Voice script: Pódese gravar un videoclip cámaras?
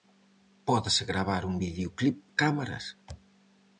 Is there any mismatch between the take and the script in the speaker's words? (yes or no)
no